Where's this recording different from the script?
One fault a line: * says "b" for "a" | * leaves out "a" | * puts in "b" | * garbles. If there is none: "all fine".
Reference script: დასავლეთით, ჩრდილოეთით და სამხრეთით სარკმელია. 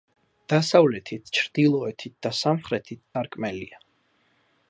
all fine